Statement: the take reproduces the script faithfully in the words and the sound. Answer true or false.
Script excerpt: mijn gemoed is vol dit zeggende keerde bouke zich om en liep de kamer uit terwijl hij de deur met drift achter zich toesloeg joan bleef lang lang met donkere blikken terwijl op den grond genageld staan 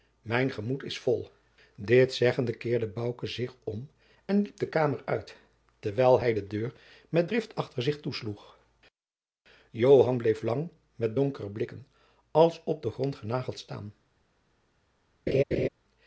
false